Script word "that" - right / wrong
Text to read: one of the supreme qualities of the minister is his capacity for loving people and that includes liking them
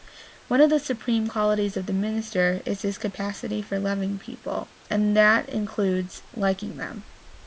right